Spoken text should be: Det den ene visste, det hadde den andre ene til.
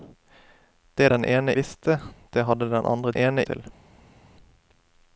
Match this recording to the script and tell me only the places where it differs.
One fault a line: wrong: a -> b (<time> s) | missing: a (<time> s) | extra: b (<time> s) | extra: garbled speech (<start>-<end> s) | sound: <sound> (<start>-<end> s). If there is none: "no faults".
no faults